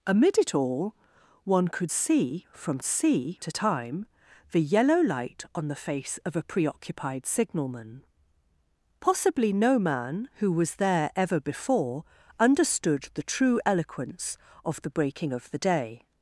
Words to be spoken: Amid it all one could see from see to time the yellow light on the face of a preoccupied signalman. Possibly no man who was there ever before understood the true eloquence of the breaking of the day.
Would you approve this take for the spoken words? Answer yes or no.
yes